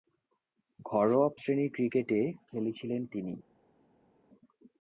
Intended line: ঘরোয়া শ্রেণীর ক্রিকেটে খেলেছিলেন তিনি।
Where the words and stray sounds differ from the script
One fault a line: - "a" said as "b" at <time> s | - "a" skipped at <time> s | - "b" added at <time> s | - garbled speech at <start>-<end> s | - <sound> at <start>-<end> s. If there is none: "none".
none